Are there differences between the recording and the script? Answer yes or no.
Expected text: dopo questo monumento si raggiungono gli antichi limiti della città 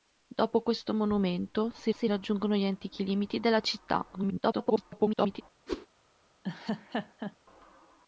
yes